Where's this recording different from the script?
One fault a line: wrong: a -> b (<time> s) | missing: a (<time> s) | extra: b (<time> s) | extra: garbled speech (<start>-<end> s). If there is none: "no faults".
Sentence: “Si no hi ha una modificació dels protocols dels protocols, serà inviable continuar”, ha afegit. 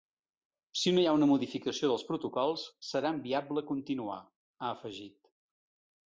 missing: dels protocols (2.6 s)